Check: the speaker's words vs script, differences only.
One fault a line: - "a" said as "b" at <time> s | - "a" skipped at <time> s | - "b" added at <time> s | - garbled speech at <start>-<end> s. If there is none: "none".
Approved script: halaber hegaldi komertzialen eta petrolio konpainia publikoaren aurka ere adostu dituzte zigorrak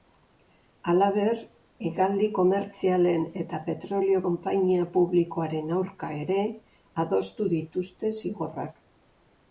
none